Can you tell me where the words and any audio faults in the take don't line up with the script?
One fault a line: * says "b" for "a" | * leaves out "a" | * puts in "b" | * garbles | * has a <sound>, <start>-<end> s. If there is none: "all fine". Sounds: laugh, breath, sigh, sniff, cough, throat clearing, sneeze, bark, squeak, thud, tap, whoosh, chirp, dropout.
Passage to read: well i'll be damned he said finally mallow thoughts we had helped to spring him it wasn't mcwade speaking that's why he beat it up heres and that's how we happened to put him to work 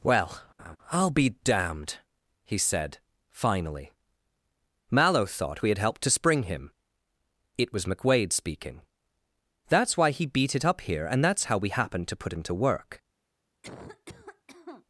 * has a laugh, 0.6-0.8 s
* says "thought" for "thoughts"
* says "was" for "wasn't"
* says "here" for "heres"
* has a cough, 13.6-14.9 s